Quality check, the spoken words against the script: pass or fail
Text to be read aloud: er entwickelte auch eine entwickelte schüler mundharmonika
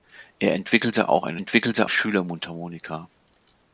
pass